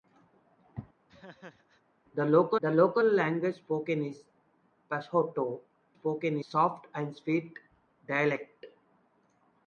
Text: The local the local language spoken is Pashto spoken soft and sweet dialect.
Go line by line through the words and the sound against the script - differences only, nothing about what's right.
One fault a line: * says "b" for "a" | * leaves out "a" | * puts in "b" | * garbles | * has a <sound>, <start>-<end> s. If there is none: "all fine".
* has a laugh, 1.1-1.8 s